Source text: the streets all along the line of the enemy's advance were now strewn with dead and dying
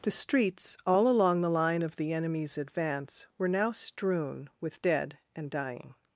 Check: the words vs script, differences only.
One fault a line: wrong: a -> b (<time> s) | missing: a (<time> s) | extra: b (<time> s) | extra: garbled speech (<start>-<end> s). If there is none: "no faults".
no faults